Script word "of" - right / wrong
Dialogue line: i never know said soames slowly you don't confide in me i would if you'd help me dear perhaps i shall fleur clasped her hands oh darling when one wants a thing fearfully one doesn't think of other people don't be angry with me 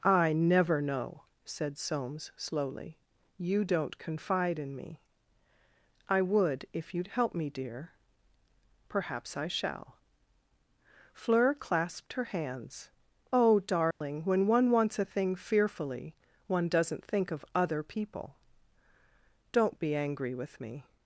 right